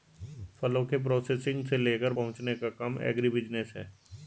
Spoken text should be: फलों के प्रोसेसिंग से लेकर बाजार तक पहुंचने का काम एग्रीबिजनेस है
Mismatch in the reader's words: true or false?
true